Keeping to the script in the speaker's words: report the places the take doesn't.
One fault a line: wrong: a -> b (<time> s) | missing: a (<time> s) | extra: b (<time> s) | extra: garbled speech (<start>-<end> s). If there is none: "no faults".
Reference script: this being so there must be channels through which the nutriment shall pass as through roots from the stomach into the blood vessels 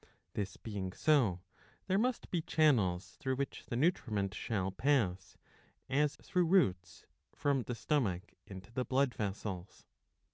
no faults